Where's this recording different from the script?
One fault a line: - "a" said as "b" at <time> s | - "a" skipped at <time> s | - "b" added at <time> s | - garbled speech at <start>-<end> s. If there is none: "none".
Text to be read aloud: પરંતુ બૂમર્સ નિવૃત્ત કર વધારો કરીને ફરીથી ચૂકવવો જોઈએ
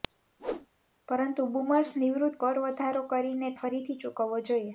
none